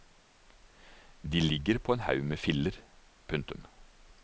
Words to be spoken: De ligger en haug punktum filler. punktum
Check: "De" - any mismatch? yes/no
no